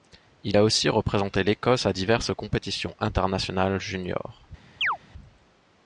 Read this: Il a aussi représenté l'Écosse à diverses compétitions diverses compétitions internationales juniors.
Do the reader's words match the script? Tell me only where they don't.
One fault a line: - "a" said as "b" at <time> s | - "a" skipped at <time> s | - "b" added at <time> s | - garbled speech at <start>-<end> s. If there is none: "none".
- "diverses compétitions" skipped at 2.9 s